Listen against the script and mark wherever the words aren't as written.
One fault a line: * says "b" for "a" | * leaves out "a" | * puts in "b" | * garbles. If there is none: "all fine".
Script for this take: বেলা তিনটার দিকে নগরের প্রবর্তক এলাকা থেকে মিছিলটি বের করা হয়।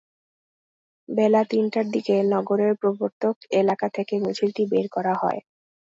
all fine